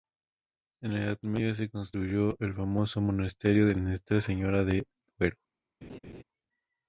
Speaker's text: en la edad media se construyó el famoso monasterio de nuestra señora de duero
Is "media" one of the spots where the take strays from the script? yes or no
no